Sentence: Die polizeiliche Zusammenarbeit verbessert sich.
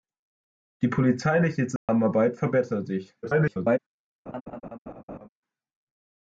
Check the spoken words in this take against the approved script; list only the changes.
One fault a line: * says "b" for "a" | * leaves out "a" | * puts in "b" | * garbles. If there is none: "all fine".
* garbles